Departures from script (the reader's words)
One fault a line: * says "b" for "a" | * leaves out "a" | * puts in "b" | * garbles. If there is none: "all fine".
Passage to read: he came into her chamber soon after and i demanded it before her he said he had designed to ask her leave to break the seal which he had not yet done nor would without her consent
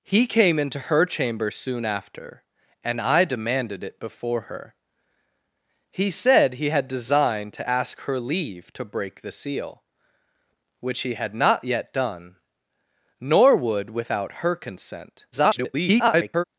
* garbles